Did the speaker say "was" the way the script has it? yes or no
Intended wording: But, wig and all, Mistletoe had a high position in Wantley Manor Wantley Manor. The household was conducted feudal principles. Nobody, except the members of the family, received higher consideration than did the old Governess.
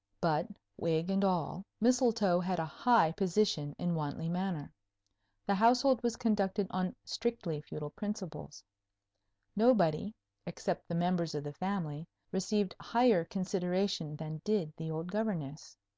yes